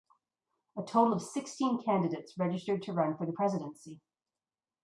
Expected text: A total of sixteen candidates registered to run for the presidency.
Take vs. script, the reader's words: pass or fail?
pass